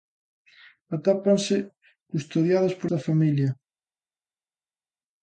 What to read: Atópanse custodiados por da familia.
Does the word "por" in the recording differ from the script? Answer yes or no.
no